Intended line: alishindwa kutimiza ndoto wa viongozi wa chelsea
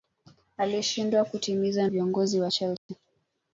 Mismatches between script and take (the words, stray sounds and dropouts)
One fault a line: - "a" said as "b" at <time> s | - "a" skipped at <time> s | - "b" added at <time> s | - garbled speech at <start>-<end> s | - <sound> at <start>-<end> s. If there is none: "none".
- "ndoto wa" skipped at 1.9 s
- dropout at 2.8-2.9 s